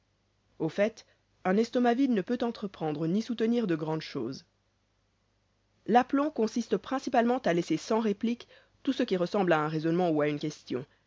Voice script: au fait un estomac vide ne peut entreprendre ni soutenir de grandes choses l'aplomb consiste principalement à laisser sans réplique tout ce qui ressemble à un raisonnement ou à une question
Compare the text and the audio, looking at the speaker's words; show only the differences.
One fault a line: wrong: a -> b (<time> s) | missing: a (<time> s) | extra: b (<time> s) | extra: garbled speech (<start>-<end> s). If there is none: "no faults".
no faults